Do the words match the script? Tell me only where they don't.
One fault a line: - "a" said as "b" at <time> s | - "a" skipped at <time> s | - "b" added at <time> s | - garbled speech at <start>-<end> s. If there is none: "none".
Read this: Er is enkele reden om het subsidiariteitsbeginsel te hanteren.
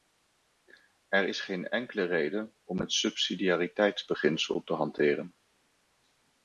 - "geen" added at 1.4 s